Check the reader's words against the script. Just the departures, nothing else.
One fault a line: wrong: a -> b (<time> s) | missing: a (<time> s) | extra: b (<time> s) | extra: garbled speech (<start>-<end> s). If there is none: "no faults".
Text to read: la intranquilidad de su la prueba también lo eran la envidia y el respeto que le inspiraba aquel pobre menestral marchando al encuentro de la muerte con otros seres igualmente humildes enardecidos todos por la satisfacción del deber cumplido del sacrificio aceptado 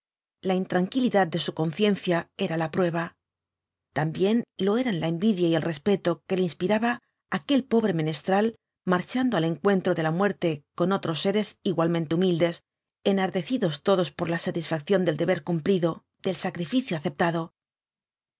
extra: conciencia era (1.5 s)